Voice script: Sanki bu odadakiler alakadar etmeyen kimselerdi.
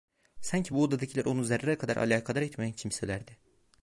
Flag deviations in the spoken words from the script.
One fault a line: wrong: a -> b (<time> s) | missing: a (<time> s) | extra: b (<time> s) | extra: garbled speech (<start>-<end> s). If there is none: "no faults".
extra: onu zerre kadar (1.3 s)